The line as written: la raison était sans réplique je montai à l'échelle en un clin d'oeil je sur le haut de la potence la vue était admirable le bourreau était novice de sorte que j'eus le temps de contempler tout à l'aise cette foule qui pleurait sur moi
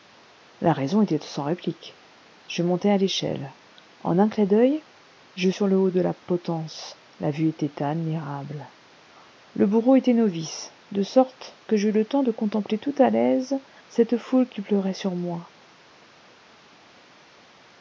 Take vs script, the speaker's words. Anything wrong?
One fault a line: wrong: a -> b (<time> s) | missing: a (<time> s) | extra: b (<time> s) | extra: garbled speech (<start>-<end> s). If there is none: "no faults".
no faults